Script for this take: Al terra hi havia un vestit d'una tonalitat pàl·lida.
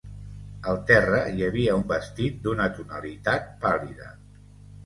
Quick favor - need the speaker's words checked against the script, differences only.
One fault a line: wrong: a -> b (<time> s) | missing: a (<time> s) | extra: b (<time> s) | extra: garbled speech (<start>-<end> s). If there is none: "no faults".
no faults